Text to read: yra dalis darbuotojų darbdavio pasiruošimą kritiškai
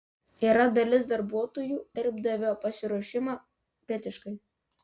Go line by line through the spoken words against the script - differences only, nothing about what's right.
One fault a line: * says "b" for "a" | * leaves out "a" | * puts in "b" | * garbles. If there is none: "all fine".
all fine